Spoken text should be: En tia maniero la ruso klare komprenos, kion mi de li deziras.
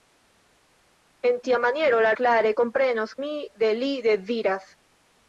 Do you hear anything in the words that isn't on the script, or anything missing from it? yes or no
yes